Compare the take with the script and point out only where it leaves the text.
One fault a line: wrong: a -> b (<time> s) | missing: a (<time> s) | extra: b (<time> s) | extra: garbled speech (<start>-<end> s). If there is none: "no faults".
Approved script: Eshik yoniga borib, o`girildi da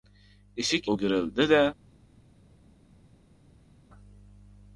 missing: yoniga borib (0.9 s)